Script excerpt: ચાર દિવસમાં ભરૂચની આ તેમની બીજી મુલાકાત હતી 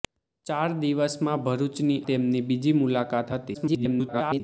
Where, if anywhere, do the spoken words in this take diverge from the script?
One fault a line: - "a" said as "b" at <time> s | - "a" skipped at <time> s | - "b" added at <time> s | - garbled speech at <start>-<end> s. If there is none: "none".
- "આ" skipped at 2.0 s
- garbled speech at 3.5-4.4 s